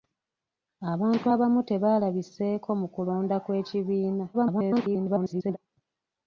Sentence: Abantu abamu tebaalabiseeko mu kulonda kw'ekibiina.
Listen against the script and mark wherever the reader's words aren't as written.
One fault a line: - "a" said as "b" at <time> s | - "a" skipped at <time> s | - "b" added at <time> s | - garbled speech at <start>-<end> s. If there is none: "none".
- garbled speech at 4.3-5.6 s